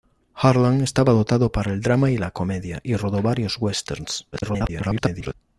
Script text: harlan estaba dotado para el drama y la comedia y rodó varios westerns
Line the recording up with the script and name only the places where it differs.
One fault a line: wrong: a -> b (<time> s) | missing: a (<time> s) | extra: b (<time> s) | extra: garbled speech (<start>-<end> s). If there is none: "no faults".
extra: garbled speech (4.3-5.3 s)